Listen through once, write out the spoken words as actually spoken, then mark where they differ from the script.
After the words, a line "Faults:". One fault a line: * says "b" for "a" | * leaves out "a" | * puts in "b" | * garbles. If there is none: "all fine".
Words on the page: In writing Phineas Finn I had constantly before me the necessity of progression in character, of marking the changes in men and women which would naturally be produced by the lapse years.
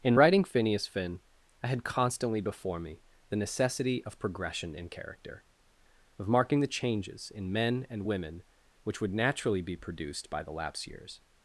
In writing Phineas Finn I had constantly before me the necessity of progression in character, of marking the changes in men and women which would naturally be produced by the lapse years.
Faults:
all fine